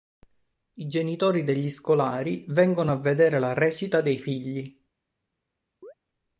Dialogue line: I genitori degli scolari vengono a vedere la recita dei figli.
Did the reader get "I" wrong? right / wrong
right